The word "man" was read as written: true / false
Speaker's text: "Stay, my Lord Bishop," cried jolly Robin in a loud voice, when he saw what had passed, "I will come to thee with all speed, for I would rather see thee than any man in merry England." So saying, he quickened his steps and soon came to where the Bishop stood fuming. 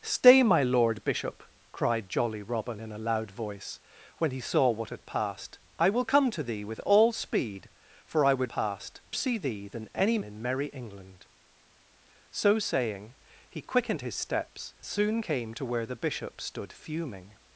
false